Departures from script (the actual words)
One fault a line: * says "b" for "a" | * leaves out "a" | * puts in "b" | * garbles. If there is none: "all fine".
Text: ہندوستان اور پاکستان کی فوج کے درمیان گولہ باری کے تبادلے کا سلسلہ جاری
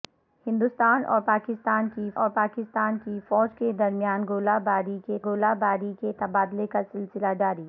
* puts in "اور پاکستان کی"
* puts in "گولہ باری کے"